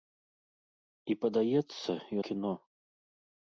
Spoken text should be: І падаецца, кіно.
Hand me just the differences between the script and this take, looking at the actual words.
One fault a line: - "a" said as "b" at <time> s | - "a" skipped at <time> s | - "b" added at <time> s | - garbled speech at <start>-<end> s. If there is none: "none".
none